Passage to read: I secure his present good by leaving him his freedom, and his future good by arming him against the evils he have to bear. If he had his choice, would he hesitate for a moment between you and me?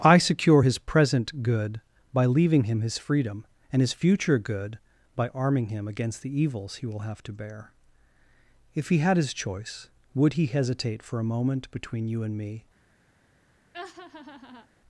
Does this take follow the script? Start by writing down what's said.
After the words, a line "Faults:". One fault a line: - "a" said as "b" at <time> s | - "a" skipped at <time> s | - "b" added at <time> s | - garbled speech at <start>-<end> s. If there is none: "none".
I secure his present good by leaving him his freedom, and his future good by arming him against the evils he will have to bear. If he had his choice, would he hesitate for a moment between you and me?
Faults:
- "will" added at 6.9 s